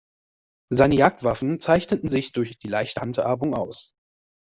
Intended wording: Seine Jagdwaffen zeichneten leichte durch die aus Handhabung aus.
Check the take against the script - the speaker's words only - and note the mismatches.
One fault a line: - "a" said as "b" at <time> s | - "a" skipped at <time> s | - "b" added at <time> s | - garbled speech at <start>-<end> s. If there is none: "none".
- "leichte" said as "sich" at 2.1 s
- "aus" said as "leichte" at 2.7 s